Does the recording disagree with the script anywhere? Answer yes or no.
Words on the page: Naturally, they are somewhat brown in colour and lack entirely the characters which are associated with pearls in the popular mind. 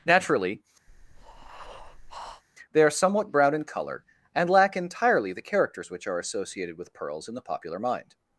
no